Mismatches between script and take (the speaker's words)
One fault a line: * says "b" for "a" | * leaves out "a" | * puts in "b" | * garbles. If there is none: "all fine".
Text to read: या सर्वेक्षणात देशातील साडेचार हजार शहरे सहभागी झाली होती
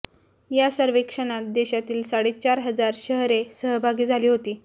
all fine